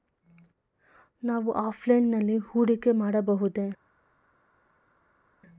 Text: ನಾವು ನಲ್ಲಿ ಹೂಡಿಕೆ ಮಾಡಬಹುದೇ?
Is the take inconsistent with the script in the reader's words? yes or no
yes